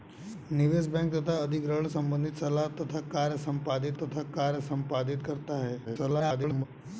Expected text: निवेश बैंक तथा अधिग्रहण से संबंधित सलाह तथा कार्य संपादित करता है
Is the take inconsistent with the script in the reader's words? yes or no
yes